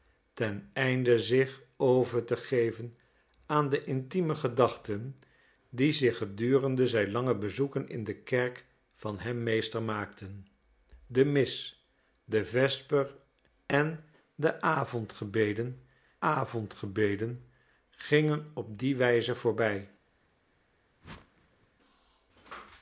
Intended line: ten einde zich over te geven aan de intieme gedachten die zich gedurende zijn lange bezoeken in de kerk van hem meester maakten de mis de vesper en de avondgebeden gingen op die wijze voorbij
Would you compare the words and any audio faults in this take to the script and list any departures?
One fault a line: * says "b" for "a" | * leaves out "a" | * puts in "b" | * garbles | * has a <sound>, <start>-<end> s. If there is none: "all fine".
* puts in "avondgebeden"
* has a whoosh, 21.0-21.7 s